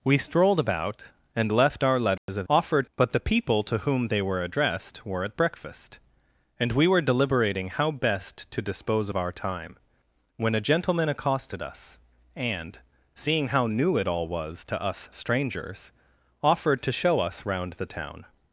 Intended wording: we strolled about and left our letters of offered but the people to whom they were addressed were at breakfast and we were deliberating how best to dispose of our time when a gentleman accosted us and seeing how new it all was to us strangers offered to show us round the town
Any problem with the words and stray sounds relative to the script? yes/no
yes